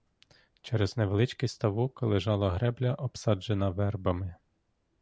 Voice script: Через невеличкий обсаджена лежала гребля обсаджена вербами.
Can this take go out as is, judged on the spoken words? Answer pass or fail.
fail